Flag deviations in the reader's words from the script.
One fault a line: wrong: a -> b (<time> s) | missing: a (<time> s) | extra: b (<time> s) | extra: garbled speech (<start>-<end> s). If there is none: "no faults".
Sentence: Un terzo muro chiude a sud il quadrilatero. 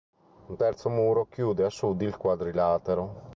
no faults